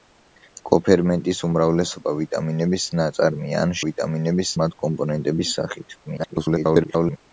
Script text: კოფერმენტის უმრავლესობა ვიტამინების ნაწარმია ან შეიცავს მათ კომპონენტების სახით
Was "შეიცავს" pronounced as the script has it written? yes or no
no